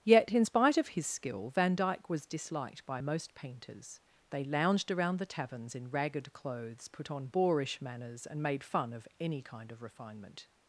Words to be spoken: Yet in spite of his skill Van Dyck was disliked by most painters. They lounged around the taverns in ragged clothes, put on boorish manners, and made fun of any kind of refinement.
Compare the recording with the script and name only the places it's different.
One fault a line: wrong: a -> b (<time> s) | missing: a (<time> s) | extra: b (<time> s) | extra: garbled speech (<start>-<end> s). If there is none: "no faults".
no faults